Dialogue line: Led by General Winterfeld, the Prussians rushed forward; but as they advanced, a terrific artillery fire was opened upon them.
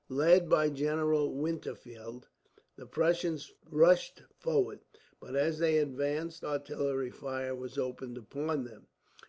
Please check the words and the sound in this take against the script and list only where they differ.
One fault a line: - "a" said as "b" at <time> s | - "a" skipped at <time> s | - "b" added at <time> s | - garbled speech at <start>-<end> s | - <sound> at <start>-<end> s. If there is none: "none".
- "a terrific" skipped at 6.4 s